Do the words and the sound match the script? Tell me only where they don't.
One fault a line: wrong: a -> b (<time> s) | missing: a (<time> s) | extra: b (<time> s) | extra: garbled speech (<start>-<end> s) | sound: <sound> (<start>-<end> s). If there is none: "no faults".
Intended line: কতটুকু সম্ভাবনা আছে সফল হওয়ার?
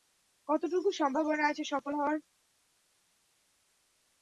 no faults